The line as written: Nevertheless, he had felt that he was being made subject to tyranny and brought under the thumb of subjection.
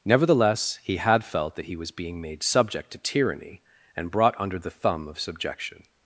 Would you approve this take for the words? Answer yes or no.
yes